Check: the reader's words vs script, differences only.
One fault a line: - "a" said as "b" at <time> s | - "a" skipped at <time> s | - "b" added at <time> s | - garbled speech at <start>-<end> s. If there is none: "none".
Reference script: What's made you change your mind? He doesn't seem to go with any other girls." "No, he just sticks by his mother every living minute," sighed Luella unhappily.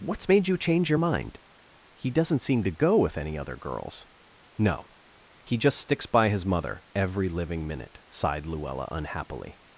none